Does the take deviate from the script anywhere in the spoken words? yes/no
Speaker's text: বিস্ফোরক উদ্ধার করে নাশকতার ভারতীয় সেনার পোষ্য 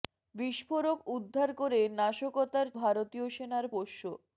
no